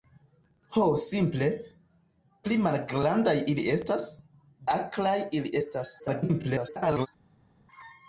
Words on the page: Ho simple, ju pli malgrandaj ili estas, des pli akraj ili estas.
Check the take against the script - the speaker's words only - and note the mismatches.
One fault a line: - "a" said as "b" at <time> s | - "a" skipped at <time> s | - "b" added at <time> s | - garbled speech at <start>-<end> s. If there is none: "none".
- "ju" skipped at 1.5 s
- "des pli" skipped at 4.0 s
- garbled speech at 6.0-7.1 s